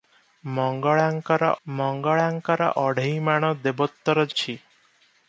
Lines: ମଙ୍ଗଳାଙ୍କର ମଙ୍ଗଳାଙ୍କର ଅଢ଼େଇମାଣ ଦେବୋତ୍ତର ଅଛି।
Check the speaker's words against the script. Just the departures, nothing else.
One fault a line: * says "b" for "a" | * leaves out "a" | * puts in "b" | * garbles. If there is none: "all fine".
all fine